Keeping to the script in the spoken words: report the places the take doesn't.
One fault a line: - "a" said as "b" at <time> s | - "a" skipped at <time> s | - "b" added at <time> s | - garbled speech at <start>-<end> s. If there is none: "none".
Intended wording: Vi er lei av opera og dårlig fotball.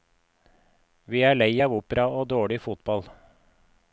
none